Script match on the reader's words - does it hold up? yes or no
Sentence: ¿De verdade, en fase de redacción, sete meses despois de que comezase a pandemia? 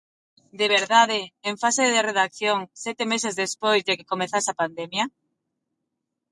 yes